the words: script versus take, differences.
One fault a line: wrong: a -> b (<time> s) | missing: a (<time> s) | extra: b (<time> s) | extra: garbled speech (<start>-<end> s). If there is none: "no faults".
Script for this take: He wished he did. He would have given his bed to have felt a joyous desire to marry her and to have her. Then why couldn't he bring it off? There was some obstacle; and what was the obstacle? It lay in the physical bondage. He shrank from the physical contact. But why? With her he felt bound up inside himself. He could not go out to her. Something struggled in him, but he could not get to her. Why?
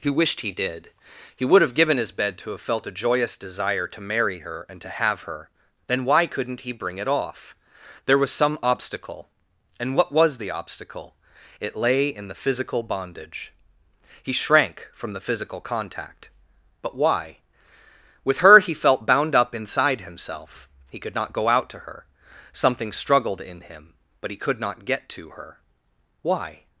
no faults